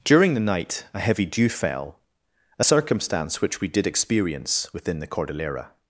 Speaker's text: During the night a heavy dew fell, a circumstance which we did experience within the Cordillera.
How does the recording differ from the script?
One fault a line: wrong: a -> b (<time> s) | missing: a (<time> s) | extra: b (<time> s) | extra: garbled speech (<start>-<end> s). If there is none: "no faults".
no faults